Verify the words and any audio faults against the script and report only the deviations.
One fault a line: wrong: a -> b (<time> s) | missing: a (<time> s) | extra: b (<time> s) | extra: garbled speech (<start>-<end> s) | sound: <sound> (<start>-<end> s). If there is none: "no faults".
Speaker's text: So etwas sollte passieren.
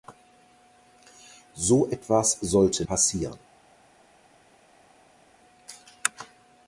no faults